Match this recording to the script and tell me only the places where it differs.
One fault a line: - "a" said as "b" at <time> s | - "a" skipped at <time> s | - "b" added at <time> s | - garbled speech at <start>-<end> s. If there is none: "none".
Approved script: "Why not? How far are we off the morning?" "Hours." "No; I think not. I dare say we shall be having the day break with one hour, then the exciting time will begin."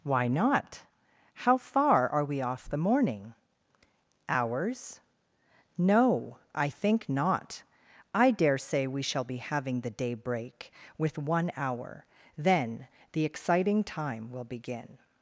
none